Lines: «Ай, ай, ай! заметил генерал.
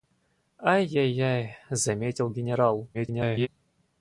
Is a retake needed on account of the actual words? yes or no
yes